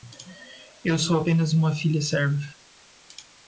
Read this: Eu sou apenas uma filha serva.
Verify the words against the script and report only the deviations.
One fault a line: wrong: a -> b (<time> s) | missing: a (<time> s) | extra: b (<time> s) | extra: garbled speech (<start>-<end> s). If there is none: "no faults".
no faults